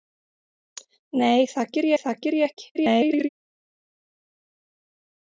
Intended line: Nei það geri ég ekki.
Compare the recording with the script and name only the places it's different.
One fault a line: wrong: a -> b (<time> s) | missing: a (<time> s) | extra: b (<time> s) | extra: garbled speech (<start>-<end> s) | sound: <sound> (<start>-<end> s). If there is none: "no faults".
extra: það geri (2.0 s)
extra: garbled speech (2.7-3.3 s)